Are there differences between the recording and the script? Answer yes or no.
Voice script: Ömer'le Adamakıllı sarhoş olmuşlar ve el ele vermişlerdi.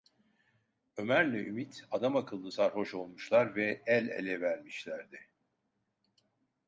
yes